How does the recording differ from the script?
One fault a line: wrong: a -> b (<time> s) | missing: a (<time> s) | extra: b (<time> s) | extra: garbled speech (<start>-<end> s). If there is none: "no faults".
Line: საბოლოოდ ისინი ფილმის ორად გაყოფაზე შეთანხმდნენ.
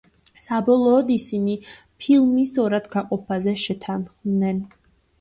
no faults